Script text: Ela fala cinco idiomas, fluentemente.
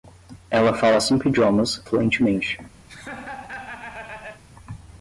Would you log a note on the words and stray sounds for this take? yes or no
yes